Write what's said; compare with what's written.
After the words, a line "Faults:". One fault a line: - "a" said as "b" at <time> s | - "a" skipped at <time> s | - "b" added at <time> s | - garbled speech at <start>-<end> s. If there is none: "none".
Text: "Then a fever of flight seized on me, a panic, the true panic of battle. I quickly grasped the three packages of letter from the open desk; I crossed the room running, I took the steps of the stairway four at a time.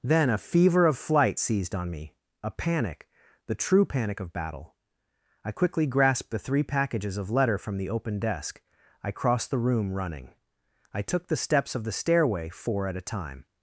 "Then a fever of flight seized on me, a panic, the true panic of battle. I quickly grasped the three packages of letter from the open desk; I crossed the room running, I took the steps of the stairway four at a time.
Faults:
none